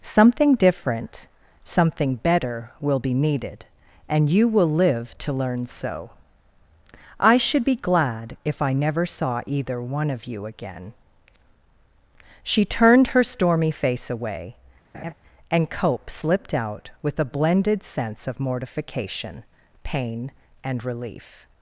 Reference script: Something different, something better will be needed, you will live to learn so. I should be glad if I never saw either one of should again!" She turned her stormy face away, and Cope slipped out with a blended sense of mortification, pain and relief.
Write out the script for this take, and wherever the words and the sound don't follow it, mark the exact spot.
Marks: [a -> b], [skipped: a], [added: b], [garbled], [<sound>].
Something different, something better will be needed, [added: and] you will live to learn so. I should be glad if I never saw either one of [should -> you] again!" She turned her stormy face away, [laugh] and Cope slipped out with a blended sense of mortification, pain and relief.